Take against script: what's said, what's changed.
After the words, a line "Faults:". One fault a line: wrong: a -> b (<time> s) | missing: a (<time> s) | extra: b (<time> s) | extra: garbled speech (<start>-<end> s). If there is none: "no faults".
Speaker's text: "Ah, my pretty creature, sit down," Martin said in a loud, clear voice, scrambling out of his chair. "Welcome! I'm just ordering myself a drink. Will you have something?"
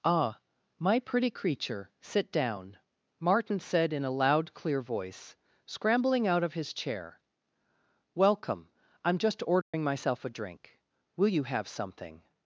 "Ah, my pretty creature, sit down," Martin said in a loud, clear voice, scrambling out of his chair. "Welcome! I'm just ordering myself a drink. Will you have something?"
Faults:
no faults